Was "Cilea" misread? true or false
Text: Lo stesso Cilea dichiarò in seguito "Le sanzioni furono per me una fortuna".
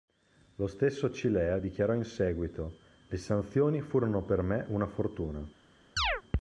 false